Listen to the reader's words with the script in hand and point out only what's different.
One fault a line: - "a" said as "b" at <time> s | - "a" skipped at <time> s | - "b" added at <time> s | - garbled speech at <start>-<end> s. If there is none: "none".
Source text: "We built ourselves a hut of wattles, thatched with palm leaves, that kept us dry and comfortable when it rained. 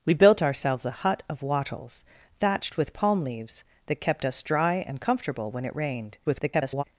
- garbled speech at 6.2-6.8 s